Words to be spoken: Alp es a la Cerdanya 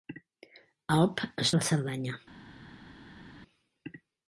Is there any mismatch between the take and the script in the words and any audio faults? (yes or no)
no